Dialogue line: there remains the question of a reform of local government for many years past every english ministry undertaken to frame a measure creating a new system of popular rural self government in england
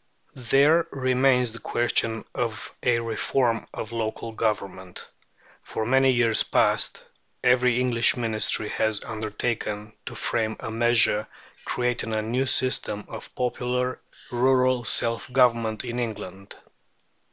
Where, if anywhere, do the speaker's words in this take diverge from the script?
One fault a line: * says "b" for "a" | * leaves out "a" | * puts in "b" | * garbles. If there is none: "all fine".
* puts in "has"